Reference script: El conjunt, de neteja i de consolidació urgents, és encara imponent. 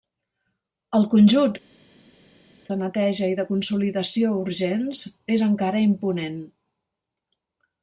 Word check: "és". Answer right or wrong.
right